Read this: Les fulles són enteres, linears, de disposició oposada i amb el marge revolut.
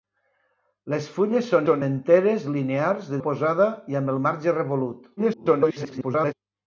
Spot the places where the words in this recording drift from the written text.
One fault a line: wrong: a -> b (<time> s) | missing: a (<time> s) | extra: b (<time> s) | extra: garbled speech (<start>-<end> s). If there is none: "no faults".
extra: són (1.7 s)
missing: disposició (3.2 s)
extra: garbled speech (5.2-6.3 s)